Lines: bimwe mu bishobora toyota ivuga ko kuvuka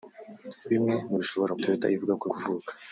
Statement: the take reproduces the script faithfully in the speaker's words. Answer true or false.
true